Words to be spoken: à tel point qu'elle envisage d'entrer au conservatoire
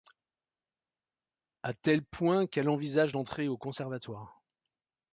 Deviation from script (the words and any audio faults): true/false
false